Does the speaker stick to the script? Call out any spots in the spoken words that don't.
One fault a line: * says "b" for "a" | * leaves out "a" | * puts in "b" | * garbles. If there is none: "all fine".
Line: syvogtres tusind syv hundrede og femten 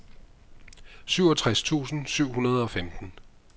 all fine